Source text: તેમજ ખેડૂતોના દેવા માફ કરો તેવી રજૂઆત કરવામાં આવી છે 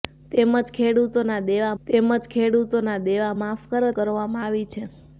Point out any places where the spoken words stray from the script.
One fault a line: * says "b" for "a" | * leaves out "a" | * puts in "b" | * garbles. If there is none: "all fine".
* puts in "તેમજ ખેડૂતોના દેવા"
* leaves out "તેવી રજૂઆત"